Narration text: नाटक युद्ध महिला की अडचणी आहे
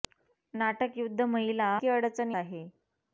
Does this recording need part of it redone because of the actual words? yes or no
no